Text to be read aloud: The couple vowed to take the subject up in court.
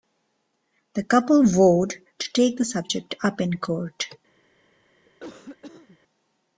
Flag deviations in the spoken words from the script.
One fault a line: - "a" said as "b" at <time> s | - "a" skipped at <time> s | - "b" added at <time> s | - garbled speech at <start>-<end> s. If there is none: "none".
none